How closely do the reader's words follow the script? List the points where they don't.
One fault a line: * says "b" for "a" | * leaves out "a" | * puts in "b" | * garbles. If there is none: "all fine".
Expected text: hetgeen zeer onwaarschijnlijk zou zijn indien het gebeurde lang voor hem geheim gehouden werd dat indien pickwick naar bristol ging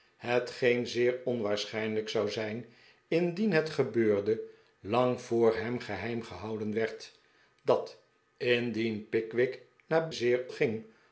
* says "zeer" for "bristol"